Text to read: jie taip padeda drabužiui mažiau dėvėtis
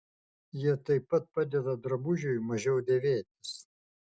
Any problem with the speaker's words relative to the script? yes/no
yes